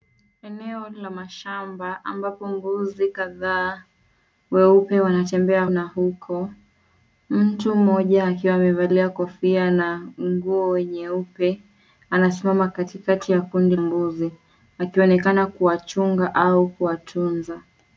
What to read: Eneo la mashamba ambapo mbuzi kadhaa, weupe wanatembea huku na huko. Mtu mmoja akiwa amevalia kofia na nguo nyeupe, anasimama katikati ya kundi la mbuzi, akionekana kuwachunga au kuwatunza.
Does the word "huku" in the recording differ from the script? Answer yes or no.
yes